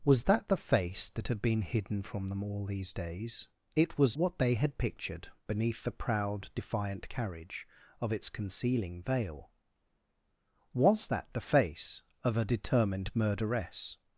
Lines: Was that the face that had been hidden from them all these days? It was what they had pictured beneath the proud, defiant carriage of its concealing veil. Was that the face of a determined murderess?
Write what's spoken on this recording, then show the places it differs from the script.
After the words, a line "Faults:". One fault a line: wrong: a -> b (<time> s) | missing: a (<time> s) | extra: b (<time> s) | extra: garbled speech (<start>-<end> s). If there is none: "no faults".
Was that the face that had been hidden from them all these days? It was what they had pictured beneath the proud, defiant carriage of its concealing veil. Was that the face of a determined murderess?
Faults:
no faults